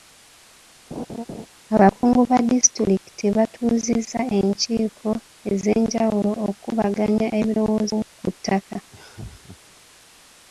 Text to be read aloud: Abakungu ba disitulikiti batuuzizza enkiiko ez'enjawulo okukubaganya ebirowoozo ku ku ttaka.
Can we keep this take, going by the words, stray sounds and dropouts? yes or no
no